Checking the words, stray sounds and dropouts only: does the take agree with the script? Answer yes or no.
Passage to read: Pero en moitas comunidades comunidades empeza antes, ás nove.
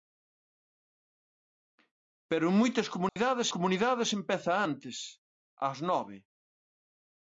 no